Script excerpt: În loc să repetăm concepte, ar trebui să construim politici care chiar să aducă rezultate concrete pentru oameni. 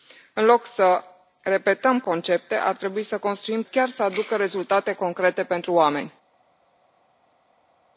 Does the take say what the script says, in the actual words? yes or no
no